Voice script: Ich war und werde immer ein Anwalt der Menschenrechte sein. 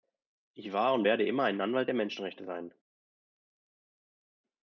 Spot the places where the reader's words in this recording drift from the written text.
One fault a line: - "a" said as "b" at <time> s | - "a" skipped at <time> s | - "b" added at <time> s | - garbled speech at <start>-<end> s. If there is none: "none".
none